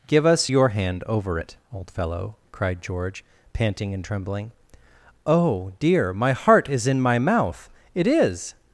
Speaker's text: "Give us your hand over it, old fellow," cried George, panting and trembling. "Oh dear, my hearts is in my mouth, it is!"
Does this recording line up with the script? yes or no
no